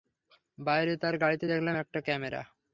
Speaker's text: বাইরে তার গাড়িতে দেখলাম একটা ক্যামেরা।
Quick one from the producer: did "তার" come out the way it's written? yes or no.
yes